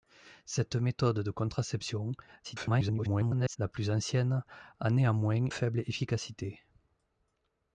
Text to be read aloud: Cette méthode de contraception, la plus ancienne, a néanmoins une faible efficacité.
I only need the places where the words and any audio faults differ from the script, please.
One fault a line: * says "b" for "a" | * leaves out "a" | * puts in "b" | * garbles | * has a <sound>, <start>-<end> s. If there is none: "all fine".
* garbles
* leaves out "une"